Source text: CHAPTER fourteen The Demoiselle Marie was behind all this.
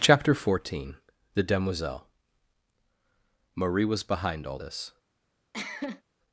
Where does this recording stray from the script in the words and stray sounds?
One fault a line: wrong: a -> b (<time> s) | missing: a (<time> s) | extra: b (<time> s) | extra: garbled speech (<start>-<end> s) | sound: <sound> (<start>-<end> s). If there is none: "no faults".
sound: cough (5.5-6.0 s)